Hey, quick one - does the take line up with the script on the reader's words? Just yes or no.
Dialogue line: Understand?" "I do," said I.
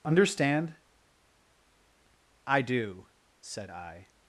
yes